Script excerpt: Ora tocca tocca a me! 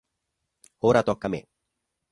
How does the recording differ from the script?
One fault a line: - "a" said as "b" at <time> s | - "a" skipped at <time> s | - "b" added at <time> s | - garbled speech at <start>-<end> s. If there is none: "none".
- "tocca" skipped at 1.3 s